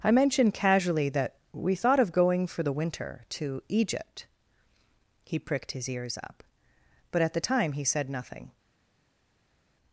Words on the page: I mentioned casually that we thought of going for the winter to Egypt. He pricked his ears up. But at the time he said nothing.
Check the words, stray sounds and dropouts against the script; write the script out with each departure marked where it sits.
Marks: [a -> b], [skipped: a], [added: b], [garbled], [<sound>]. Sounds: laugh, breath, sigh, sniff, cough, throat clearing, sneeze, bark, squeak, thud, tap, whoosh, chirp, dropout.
I mentioned casually that we thought of going for the winter to Egypt. He pricked his ears up. But at the time he said nothing.